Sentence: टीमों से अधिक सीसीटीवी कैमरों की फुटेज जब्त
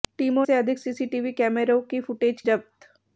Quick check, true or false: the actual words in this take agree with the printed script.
true